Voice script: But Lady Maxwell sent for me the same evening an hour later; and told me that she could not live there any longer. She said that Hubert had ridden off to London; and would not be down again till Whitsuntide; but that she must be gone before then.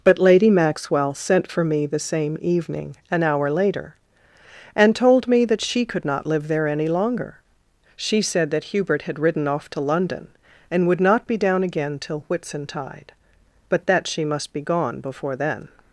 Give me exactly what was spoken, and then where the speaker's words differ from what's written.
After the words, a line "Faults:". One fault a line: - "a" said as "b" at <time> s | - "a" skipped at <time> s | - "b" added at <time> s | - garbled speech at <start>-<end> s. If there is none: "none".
But Lady Maxwell sent for me the same evening an hour later; and told me that she could not live there any longer. She said that Hubert had ridden off to London; and would not be down again till Whitsuntide; but that she must be gone before then.
Faults:
none